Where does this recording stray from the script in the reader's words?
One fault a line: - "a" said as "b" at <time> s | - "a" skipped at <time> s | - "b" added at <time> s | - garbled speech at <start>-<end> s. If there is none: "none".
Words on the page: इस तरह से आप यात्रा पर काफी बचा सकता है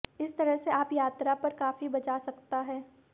none